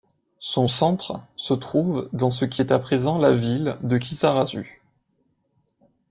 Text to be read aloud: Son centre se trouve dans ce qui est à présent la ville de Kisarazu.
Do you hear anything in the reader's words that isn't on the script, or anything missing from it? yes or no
no